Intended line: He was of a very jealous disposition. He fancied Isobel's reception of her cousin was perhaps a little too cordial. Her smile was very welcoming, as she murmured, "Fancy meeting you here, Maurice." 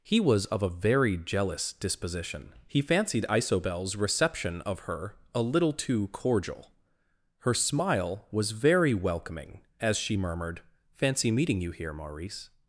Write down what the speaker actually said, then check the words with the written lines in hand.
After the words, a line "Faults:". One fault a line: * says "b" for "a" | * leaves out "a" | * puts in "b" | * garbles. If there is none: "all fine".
He was of a very jealous disposition. He fancied Isobel's reception of her a little too cordial. Her smile was very welcoming, as she murmured, "Fancy meeting you here, Maurice."
Faults:
* leaves out "cousin was perhaps"